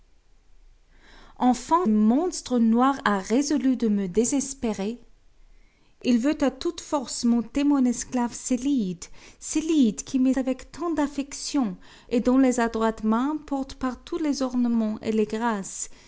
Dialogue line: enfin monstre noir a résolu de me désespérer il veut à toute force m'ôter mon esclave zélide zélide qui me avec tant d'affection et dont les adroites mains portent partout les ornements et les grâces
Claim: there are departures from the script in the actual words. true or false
false